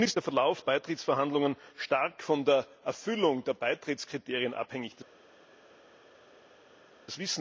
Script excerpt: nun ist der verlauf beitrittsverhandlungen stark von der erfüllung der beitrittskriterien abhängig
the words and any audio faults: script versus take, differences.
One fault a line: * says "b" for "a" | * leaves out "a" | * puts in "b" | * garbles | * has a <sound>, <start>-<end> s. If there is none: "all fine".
all fine